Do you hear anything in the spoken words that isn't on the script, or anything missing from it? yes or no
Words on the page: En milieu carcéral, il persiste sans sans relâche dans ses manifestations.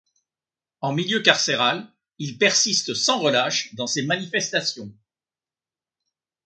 yes